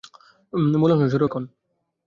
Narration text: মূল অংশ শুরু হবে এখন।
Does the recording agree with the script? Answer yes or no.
no